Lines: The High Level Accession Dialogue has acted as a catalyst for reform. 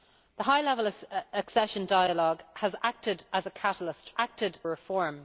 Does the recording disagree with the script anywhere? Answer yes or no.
yes